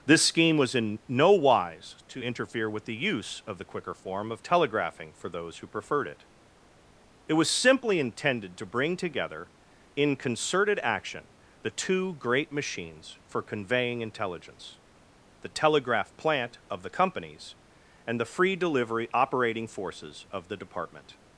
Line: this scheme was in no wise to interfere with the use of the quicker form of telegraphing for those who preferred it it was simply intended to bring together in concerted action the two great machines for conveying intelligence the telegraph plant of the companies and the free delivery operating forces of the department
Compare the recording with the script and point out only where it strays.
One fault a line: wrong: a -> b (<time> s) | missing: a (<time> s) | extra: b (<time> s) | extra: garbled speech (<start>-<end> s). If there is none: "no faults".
no faults